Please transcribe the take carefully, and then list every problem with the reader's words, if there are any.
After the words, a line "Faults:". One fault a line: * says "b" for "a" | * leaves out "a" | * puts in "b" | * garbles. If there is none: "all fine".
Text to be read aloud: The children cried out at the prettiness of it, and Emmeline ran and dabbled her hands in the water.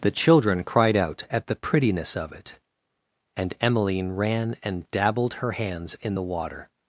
The children cried out at the prettiness of it, and Emmeline ran and dabbled her hands in the water.
Faults:
all fine